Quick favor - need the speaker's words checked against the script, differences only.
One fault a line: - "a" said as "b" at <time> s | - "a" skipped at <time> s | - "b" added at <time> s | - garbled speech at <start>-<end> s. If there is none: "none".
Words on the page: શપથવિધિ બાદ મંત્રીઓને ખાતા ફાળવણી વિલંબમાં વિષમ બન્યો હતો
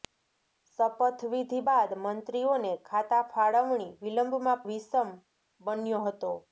none